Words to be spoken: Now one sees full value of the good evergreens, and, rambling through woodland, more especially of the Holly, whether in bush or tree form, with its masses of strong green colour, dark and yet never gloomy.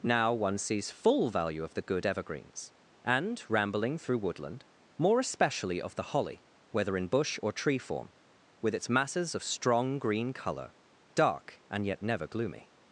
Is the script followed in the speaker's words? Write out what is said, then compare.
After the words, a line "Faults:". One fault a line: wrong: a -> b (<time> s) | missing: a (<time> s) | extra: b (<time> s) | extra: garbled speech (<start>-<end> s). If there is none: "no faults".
Now one sees full value of the good evergreens, and, rambling through woodland, more especially of the Holly, whether in bush or tree form, with its masses of strong green colour, dark and yet never gloomy.
Faults:
no faults